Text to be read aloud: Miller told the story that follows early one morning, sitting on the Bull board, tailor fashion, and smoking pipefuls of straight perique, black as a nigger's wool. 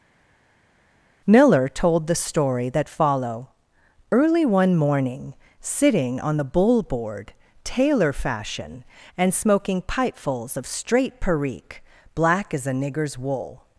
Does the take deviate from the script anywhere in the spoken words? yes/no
yes